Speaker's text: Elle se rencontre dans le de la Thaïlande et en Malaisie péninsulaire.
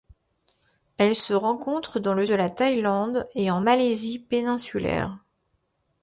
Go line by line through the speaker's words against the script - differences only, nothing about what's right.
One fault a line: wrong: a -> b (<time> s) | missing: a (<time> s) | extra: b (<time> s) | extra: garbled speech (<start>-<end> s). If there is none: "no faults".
no faults